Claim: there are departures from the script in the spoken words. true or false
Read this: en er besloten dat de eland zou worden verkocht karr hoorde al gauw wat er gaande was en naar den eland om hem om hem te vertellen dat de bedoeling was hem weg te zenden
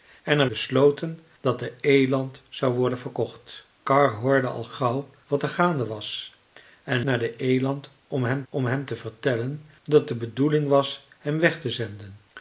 false